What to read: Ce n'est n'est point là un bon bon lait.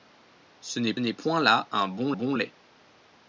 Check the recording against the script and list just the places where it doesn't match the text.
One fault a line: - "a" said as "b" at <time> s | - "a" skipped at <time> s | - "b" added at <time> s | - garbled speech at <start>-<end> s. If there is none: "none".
none